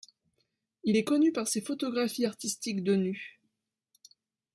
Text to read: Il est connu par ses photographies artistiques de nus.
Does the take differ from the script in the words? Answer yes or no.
no